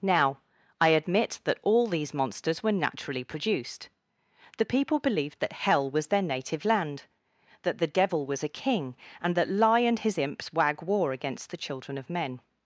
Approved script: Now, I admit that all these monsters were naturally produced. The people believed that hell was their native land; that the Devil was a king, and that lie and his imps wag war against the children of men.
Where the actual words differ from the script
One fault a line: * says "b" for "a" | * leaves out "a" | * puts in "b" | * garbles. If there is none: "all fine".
all fine